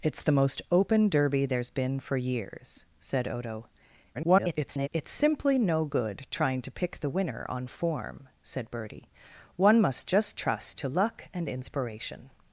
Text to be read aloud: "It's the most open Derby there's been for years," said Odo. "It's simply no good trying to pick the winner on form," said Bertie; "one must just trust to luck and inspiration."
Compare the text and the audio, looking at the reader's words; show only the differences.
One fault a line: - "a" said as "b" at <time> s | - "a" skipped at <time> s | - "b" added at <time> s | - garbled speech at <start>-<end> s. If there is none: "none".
- garbled speech at 4.1-4.9 s